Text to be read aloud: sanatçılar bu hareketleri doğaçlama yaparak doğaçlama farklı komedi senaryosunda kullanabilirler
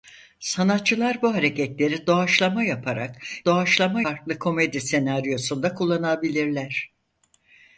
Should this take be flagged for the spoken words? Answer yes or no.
no